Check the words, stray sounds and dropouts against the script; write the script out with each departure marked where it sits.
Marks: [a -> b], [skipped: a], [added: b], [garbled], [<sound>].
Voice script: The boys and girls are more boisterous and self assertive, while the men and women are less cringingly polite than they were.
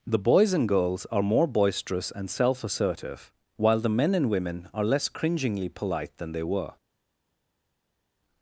The boys and girls are more boisterous and self assertive, while the men and women are less cringingly polite than they were.